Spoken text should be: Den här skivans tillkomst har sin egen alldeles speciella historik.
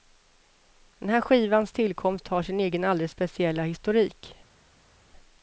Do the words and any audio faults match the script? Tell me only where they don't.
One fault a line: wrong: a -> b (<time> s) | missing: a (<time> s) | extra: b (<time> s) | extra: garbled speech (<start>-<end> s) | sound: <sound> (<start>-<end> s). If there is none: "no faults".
no faults